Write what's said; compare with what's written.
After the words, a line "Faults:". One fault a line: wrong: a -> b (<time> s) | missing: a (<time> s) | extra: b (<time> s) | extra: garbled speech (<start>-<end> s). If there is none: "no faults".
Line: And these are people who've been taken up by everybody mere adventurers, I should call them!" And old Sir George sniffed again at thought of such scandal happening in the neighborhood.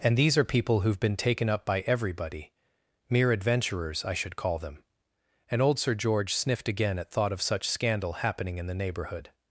And these are people who've been taken up by everybody mere adventurers, I should call them!" And old Sir George sniffed again at thought of such scandal happening in the neighborhood.
Faults:
no faults